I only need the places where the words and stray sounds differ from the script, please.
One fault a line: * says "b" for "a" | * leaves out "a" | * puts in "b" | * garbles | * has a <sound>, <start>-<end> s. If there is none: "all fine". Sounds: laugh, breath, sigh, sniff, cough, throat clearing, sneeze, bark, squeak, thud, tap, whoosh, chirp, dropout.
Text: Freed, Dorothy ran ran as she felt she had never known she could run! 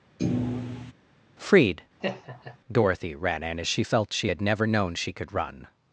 * has a thud, 0.2-0.9 s
* has a laugh, 2.0-2.6 s
* says "in" for "ran"